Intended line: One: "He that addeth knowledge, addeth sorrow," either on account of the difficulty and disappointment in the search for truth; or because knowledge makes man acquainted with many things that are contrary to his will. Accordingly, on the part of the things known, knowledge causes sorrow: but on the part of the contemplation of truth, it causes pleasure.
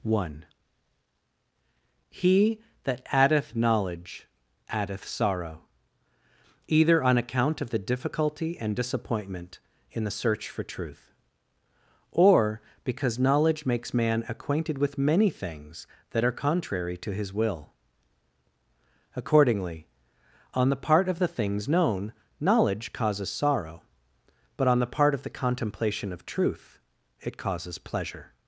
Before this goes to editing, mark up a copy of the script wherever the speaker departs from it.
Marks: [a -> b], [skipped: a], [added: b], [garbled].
One: "He that addeth knowledge, addeth sorrow," either on account of the difficulty and disappointment in the search for truth; or because knowledge makes man acquainted with many things that are contrary to his will. Accordingly, on the part of the things known, knowledge causes sorrow: but on the part of the contemplation of truth, it causes pleasure.